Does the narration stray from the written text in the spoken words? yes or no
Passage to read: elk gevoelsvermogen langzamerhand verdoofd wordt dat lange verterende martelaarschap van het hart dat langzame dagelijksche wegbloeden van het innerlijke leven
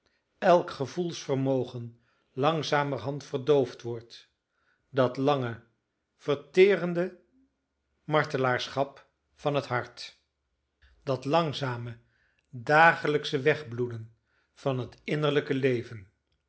no